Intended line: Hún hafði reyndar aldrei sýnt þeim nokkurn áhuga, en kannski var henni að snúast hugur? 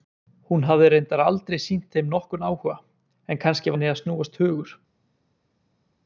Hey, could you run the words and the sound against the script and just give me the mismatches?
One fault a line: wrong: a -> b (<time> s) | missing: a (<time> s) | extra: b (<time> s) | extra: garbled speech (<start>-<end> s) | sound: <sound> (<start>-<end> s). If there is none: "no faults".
missing: var (3.8 s)